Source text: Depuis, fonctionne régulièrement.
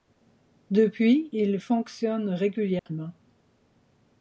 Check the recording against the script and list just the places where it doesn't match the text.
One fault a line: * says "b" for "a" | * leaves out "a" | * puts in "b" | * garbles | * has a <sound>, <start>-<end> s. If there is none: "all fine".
* puts in "il"
* has a dropout, 2.8-2.9 s